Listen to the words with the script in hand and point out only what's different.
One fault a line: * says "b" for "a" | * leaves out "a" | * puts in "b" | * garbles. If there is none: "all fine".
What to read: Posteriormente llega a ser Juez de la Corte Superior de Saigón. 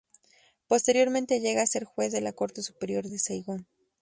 all fine